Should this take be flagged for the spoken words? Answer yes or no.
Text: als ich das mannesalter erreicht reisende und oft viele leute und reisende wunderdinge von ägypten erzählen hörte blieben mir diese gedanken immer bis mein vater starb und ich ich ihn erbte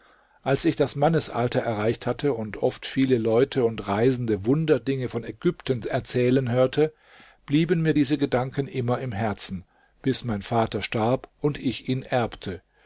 yes